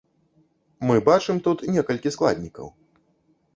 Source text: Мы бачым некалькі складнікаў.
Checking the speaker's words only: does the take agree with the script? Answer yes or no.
no